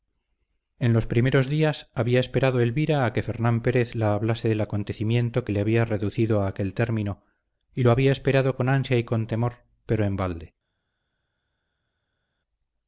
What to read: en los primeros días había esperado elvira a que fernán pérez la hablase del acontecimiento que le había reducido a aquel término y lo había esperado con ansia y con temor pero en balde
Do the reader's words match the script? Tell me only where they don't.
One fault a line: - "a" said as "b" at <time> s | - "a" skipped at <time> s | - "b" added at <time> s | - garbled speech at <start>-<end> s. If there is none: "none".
none